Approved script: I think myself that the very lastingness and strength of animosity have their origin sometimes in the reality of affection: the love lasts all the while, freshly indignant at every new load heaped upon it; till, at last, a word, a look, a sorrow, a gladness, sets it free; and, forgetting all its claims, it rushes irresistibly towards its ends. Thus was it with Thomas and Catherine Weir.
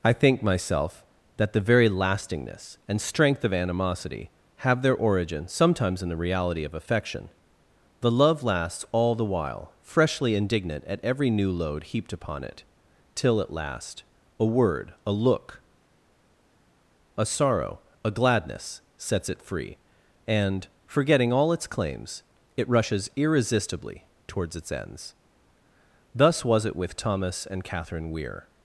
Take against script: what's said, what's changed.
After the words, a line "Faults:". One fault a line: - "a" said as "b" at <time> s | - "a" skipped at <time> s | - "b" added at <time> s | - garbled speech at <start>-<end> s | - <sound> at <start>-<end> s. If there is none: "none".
I think myself that the very lastingness and strength of animosity have their origin sometimes in the reality of affection: the love lasts all the while, freshly indignant at every new load heaped upon it; till, at last, a word, a look, a sorrow, a gladness, sets it free; and, forgetting all its claims, it rushes irresistibly towards its ends. Thus was it with Thomas and Catherine Weir.
Faults:
none